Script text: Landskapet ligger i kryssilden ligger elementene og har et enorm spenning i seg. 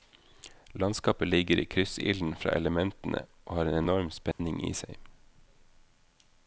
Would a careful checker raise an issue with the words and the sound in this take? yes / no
yes